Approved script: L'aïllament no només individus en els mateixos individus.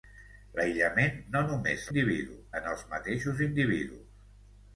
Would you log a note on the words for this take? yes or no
no